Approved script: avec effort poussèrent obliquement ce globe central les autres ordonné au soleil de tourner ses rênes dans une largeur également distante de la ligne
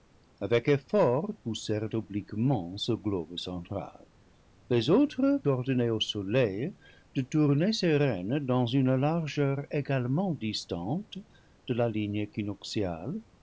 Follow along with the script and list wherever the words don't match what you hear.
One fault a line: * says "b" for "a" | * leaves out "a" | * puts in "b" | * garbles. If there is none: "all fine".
all fine